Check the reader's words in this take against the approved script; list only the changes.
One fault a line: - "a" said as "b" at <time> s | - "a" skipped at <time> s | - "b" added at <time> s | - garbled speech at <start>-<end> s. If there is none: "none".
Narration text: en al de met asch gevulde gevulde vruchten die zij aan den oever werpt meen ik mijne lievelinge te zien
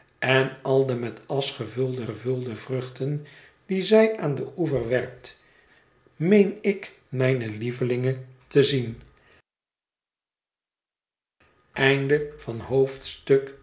none